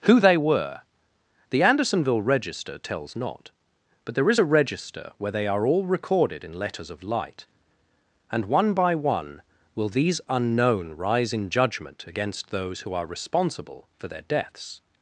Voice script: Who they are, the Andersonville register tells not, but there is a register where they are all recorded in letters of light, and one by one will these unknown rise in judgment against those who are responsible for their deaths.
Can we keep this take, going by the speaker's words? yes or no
no